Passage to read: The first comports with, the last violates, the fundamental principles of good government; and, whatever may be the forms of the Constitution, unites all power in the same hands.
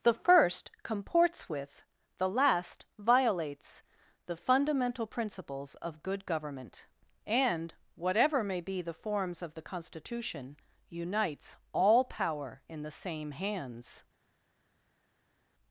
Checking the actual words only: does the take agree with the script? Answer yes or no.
yes